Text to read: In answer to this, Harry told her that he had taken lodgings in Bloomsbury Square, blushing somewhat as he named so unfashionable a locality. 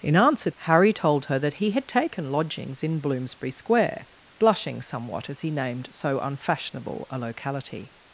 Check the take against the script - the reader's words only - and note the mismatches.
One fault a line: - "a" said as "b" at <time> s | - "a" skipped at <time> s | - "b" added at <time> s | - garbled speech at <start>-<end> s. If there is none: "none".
- "to this" skipped at 0.5 s